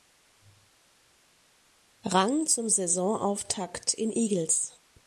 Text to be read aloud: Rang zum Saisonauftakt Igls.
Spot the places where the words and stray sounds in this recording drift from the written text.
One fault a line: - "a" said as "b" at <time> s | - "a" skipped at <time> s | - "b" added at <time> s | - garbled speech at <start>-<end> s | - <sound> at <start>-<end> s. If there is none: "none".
- "in" added at 3.9 s